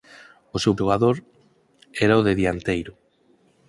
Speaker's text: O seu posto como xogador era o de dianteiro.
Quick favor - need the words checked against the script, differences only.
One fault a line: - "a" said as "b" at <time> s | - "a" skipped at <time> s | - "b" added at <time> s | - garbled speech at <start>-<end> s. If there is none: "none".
- "posto como" skipped at 0.7 s